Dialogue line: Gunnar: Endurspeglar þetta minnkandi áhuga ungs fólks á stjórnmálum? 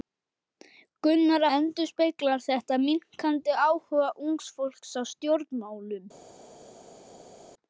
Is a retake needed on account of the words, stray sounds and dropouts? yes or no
no